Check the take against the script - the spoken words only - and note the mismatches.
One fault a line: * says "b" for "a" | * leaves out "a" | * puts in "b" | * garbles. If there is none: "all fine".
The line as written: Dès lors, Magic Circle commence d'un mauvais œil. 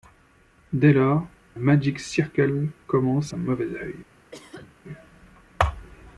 all fine